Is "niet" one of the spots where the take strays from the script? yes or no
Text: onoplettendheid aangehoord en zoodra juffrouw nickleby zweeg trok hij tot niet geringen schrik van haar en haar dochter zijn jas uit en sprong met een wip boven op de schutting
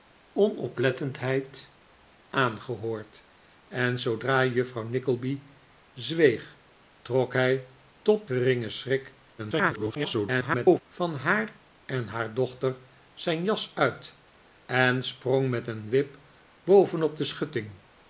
yes